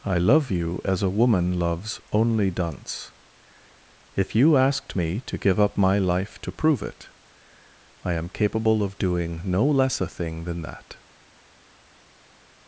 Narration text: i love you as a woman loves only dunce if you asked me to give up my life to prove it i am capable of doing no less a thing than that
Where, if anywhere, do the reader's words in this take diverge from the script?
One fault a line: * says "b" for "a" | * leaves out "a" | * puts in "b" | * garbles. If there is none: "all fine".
all fine